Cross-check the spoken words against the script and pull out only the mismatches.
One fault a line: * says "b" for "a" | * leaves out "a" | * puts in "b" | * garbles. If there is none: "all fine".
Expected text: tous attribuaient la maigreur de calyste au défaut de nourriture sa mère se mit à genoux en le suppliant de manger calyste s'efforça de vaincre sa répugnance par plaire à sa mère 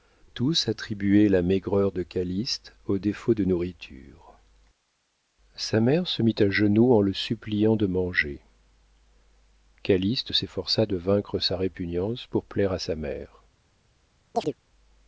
* says "pour" for "par"